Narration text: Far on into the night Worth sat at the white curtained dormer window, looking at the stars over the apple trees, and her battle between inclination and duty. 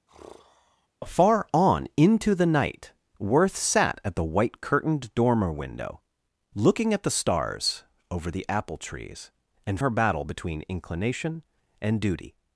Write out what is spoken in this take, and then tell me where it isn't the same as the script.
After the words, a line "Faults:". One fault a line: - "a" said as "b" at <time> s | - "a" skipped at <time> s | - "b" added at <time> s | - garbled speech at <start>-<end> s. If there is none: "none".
Far on into the night Worth sat at the white curtained dormer window, looking at the stars over the apple trees, and her battle between inclination and duty.
Faults:
none